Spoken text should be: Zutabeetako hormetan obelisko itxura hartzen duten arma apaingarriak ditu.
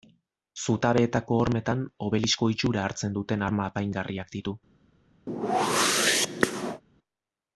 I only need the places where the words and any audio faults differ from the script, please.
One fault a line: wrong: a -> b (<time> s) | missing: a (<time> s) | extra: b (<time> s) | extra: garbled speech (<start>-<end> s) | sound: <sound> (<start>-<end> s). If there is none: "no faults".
sound: whoosh (5.3-6.8 s)